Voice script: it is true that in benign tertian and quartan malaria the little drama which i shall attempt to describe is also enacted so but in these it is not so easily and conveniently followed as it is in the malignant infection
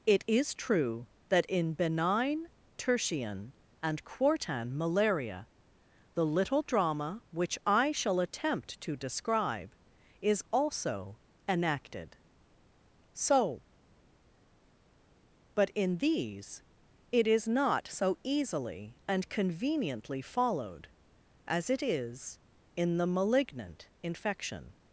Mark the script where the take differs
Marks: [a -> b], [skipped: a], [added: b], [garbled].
it is true that in benign tertian and quartan malaria the little drama which i shall attempt to describe is also enacted so but in these it is not so easily and conveniently followed as it is in the malignant infection